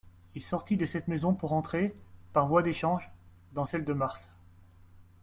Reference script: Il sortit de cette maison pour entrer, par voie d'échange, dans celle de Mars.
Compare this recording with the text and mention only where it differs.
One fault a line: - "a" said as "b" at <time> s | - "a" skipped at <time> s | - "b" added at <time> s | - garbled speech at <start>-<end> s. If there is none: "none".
none